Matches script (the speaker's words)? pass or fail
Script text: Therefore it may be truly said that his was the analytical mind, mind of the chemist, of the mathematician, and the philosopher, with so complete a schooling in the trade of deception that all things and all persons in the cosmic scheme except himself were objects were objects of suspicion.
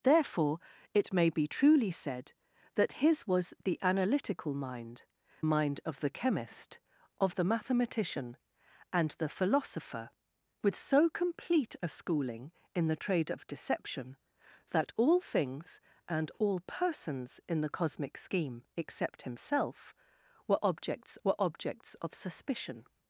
pass